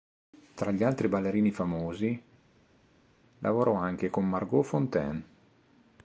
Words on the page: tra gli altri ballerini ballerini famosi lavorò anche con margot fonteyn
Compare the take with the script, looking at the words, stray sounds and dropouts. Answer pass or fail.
fail